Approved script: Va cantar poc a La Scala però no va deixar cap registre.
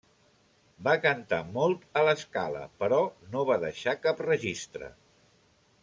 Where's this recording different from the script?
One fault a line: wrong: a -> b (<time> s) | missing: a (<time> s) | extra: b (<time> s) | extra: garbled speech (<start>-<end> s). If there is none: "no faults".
wrong: poc -> molt (1.6 s)